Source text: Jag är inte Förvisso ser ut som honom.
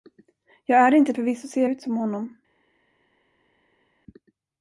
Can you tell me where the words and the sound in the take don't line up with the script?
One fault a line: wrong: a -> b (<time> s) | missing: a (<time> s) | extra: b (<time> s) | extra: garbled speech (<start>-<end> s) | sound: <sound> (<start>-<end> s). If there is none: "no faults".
no faults